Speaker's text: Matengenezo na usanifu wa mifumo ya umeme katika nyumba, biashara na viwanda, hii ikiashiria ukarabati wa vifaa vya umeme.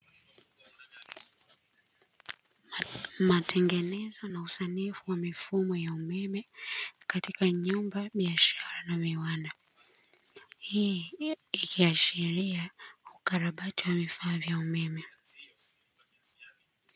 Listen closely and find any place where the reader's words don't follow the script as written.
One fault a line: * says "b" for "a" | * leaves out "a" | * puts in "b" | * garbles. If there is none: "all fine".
all fine